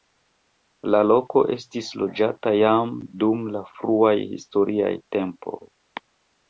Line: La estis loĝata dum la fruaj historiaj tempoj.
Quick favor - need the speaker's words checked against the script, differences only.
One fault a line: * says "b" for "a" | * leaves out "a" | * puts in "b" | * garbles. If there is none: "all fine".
* puts in "loko"
* puts in "jam"